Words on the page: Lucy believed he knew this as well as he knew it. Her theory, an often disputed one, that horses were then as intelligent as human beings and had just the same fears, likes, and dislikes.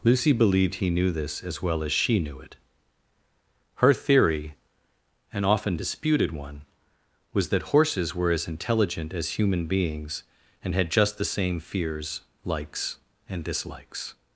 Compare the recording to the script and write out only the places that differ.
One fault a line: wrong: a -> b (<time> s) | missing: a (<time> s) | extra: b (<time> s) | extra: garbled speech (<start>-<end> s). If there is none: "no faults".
wrong: he -> she (1.9 s)
extra: was (7.3 s)
missing: then (8.3 s)